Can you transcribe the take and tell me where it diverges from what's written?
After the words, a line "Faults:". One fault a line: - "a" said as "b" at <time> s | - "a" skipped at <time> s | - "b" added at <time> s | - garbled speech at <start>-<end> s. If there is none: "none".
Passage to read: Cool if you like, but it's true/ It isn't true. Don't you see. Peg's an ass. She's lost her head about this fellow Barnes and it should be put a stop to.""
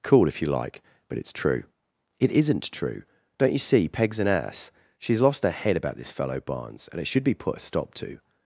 Cool if you like, but it's true/ It isn't true. Don't you see. Peg's an ass. She's lost her head about this fellow Barnes and it should be put a stop to.""
Faults:
none